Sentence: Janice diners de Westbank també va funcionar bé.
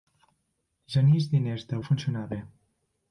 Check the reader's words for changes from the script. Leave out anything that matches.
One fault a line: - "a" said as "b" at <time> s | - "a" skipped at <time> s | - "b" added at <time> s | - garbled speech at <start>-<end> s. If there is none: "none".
- "Westbank també" skipped at 1.8 s